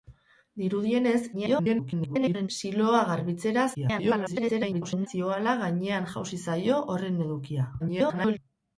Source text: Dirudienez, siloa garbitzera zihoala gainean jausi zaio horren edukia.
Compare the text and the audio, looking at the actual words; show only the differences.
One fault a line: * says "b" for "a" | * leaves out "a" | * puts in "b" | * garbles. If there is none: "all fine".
* garbles
* garbles
* garbles